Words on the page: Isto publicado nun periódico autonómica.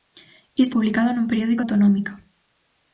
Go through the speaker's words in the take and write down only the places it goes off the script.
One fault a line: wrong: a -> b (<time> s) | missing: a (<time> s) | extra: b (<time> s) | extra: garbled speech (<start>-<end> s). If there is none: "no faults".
no faults